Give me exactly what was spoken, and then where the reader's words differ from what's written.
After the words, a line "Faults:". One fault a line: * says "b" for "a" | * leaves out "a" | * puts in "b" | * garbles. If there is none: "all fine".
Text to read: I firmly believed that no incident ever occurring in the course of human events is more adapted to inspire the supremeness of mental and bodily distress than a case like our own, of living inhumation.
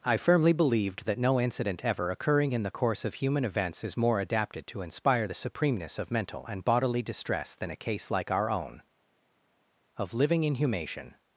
I firmly believed that no incident ever occurring in the course of human events is more adapted to inspire the supremeness of mental and bodily distress than a case like our own, of living inhumation.
Faults:
all fine